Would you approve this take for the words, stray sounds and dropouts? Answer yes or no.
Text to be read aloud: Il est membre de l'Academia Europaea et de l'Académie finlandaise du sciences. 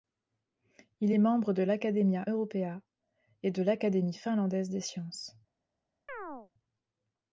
no